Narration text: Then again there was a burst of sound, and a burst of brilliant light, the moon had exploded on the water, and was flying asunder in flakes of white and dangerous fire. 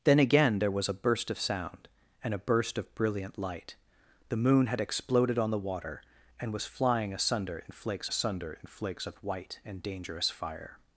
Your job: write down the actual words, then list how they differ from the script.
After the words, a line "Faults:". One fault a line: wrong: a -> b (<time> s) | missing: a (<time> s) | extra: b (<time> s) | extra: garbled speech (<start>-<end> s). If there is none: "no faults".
Then again there was a burst of sound, and a burst of brilliant light, the moon had exploded on the water, and was flying asunder in flakes asunder in flakes of white and dangerous fire.
Faults:
extra: asunder in flakes (8.0 s)